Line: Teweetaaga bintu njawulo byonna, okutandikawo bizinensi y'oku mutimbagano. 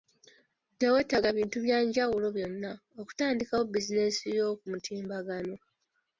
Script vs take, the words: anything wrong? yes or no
yes